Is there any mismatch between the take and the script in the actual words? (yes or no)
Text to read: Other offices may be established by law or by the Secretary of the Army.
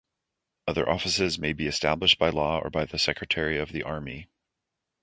no